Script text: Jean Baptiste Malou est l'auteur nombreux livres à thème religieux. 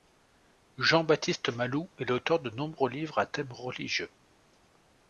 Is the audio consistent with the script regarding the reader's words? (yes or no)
no